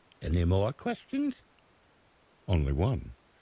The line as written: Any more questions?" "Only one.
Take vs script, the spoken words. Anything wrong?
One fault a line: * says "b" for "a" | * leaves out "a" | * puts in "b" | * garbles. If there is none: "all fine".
all fine